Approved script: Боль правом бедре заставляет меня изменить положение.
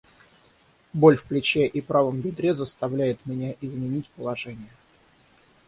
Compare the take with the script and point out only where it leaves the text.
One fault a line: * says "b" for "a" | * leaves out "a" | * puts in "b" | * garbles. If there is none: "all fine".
* puts in "в плече и"